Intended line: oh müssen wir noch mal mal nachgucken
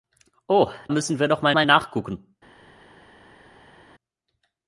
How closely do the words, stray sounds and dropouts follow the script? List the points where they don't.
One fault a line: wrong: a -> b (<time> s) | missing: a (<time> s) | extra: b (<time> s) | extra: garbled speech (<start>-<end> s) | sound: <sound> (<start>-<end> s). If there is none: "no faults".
no faults